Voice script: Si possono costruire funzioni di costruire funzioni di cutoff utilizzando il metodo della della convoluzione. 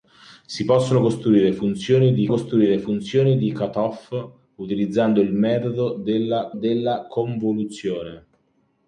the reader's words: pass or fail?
pass